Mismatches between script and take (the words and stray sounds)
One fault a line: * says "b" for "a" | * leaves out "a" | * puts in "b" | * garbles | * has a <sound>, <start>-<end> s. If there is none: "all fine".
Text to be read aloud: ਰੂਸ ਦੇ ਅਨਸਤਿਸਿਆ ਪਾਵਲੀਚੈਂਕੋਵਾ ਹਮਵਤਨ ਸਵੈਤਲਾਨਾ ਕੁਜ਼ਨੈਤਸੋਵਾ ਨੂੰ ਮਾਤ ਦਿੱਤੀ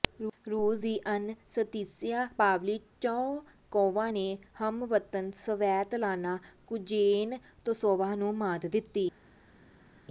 * says "ਦੀ" for "ਦੇ"
* puts in "ਨੇ"